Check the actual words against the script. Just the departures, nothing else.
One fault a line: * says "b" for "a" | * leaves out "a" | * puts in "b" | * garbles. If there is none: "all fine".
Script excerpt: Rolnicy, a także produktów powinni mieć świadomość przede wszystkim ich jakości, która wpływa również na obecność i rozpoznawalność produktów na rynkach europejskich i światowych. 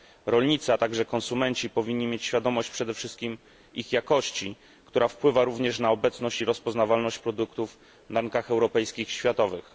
* says "konsumenci" for "produktów"